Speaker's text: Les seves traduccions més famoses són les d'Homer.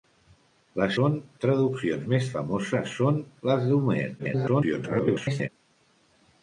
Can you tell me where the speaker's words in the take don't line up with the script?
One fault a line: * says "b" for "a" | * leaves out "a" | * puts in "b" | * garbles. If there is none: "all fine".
* says "són" for "seves"
* garbles